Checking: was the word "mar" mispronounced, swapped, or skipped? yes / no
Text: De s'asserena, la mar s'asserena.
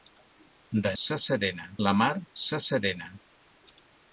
no